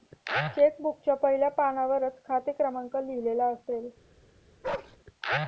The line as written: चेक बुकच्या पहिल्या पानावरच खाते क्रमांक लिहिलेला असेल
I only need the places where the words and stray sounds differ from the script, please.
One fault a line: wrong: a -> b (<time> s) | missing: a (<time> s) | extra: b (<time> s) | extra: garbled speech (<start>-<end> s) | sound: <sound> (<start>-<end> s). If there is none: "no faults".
sound: bark (4.6-5.0 s)